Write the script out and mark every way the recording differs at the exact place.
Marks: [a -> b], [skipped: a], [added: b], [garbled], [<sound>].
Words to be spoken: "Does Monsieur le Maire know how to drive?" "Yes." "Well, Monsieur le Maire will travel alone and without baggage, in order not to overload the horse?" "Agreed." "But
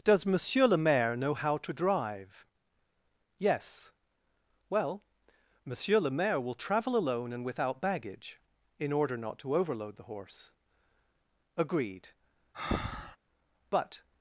"Does Monsieur le Maire know how to drive?" "Yes." "Well, Monsieur le Maire will travel alone and without baggage, in order not to overload the horse?" "Agreed." [breath] "But